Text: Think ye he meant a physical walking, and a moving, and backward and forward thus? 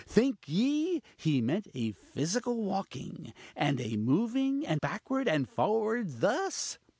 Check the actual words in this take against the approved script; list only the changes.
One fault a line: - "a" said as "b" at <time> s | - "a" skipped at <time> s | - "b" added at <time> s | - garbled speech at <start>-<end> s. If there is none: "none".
none